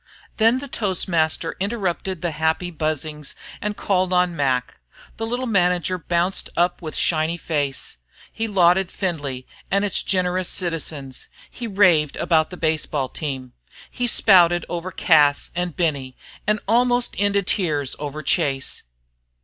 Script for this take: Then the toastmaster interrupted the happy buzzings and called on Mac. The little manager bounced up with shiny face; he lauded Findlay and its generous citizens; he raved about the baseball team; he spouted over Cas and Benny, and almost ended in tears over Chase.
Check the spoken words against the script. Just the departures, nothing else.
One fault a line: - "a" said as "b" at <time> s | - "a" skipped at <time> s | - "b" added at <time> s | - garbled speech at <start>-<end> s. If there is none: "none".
- "in" skipped at 17.5 s